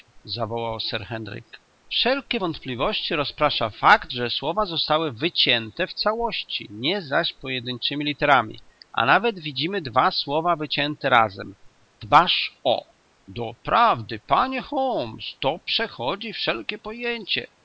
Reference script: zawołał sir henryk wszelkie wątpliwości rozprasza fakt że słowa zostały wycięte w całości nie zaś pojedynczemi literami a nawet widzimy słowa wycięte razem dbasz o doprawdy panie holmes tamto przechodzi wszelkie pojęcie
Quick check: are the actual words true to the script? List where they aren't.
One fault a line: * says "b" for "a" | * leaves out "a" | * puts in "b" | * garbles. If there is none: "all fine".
* puts in "dwa"
* says "to" for "tamto"